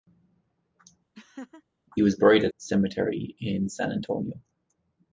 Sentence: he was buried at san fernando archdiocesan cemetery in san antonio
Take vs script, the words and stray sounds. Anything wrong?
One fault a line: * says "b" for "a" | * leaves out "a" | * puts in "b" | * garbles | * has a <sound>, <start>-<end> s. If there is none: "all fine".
* has a laugh, 1.1-1.6 s
* leaves out "san fernando archdiocesan"